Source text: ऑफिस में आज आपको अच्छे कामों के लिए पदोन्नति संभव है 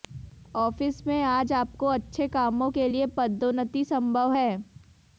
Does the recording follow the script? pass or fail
pass